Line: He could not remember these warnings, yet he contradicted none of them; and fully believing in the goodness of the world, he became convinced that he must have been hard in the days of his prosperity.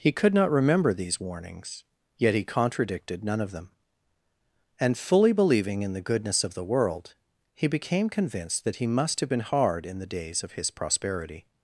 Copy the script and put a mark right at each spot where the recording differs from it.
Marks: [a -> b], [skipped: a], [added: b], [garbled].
He could not remember these warnings, yet he contradicted none of them; and fully believing in the goodness of the world, he became convinced that he must have been hard in the days of his prosperity.